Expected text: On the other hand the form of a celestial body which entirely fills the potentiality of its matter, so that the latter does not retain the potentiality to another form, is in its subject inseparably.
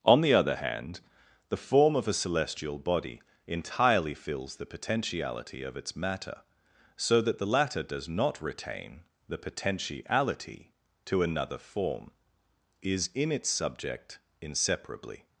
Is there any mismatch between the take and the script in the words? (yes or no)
yes